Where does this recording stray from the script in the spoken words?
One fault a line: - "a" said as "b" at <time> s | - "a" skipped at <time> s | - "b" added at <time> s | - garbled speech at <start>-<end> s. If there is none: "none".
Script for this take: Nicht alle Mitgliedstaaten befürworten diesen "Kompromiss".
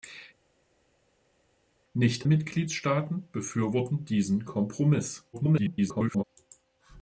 - "alle" skipped at 2.3 s
- garbled speech at 5.3-6.2 s